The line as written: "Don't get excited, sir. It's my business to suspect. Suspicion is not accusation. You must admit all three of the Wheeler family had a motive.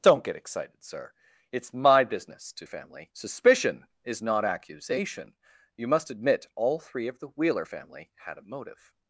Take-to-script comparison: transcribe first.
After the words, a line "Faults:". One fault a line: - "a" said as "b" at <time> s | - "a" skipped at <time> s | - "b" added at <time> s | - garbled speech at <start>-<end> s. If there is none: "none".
"Don't get excited, sir. It's my business to family. Suspicion is not accusation. You must admit all three of the Wheeler family had a motive.
Faults:
- "suspect" said as "family" at 2.6 s